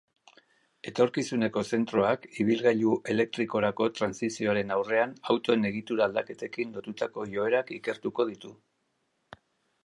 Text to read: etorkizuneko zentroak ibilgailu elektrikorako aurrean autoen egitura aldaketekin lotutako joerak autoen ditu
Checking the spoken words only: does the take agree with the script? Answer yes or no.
no